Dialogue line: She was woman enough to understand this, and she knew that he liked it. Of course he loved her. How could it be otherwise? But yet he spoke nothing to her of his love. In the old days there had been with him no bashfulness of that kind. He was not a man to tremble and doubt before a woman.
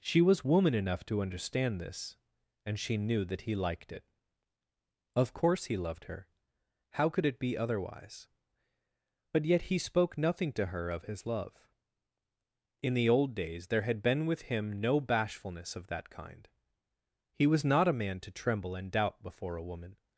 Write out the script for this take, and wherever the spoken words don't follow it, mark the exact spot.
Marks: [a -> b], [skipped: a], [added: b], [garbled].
She was woman enough to understand this, and she knew that he liked it. Of course he loved her. How could it be otherwise? But yet he spoke nothing to her of his love. In the old days there had been with him no bashfulness of that kind. He was not a man to tremble and doubt before a woman.